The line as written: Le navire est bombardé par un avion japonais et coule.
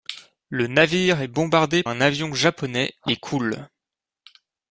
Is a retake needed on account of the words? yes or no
yes